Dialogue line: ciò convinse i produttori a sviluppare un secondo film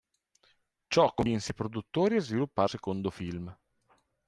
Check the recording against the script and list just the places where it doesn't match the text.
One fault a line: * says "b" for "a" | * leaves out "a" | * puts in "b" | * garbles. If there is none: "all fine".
* leaves out "un"